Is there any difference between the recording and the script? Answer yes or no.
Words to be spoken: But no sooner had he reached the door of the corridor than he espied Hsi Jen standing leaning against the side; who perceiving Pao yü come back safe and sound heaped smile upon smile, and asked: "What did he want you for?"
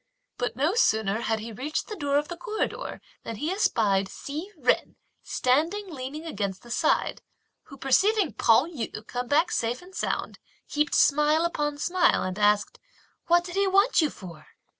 no